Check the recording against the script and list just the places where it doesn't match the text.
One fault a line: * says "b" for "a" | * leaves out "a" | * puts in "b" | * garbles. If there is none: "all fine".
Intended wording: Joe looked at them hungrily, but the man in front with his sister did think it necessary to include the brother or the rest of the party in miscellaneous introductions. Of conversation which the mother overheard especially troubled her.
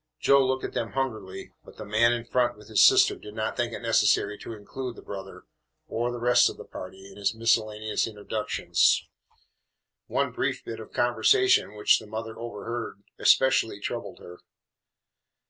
* puts in "not"
* puts in "his"
* puts in "One brief bit"